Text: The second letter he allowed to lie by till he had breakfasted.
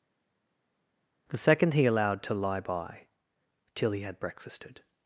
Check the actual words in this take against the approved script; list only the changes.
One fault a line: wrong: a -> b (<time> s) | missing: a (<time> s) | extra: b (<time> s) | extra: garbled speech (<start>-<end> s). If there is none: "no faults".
missing: letter (1.7 s)